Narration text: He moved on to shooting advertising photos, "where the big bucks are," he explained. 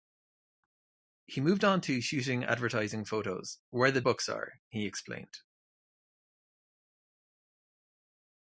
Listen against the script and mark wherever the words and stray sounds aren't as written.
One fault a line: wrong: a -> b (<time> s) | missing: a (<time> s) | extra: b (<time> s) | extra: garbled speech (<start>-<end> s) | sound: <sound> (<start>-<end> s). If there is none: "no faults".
missing: big (4.0 s)